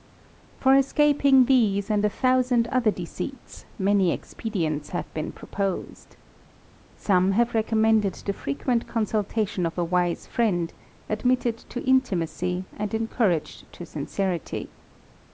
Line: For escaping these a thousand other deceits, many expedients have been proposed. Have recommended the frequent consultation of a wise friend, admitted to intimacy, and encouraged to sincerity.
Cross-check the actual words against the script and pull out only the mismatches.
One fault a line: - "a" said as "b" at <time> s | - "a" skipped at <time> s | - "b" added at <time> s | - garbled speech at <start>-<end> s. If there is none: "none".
- "and" added at 1.9 s
- "Some" added at 7.0 s